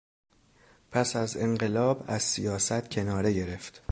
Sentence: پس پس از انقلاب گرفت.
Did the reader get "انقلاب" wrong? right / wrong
wrong